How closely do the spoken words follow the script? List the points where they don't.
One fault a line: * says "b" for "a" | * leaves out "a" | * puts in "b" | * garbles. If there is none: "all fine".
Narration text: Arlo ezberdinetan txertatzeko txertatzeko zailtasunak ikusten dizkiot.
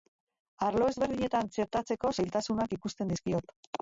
* leaves out "txertatzeko"